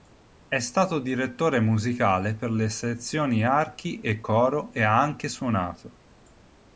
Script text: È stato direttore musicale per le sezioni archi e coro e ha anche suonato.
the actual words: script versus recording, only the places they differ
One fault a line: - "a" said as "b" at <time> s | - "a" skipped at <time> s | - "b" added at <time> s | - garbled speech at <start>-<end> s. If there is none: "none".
none